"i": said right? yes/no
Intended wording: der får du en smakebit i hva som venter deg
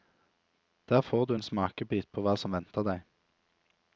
no